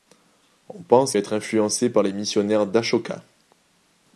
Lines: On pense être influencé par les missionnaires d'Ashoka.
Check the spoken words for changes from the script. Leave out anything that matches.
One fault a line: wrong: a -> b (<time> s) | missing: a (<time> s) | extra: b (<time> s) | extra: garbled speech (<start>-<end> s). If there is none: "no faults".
no faults